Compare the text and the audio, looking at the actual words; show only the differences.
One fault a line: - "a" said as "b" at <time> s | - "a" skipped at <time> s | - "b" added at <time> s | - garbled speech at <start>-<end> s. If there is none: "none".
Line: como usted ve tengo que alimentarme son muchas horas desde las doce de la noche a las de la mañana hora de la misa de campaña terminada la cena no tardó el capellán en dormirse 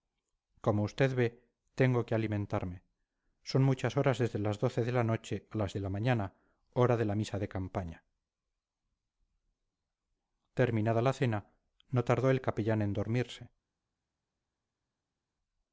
none